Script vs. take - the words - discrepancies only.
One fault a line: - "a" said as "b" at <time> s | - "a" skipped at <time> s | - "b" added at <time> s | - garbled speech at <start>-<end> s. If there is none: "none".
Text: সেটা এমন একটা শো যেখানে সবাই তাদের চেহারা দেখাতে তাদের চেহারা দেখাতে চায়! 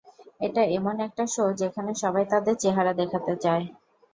- "সেটা" said as "এটা" at 0.4 s
- "তাদের চেহারা দেখাতে" skipped at 3.3 s